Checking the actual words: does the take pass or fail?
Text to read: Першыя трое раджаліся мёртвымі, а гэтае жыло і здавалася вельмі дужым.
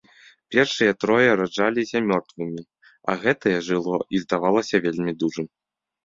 pass